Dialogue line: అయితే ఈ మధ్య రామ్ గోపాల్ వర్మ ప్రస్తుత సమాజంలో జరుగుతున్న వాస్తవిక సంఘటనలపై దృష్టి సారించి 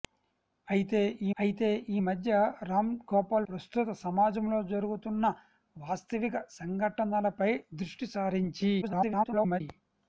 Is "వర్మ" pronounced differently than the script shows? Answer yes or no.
yes